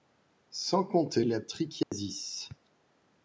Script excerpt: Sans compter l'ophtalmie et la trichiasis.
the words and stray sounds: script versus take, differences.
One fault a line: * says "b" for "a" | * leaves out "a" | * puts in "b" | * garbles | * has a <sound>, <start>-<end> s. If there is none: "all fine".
* leaves out "l'ophtalmie"
* has a dropout, 1.8-1.9 s